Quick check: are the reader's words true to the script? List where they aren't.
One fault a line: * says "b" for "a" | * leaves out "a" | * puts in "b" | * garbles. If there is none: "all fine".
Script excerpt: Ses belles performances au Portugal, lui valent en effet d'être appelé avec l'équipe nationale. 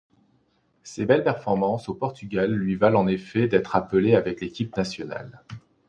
all fine